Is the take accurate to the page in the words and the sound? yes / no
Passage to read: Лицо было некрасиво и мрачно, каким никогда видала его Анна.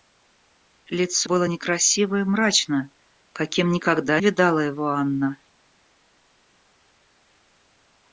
yes